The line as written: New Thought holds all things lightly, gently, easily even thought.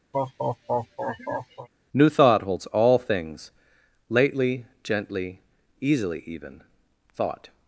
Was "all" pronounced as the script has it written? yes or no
yes